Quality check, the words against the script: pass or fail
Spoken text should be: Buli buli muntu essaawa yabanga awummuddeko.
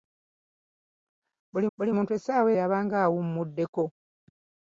pass